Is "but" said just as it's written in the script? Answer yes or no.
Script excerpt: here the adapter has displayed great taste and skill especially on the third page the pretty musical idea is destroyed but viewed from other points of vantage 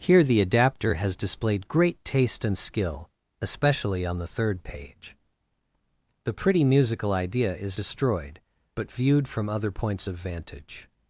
yes